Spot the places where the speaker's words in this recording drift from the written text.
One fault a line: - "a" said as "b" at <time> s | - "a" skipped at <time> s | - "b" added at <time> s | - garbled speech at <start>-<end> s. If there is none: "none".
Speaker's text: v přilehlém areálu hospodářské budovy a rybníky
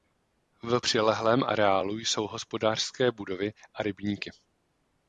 - "jsou" added at 2.0 s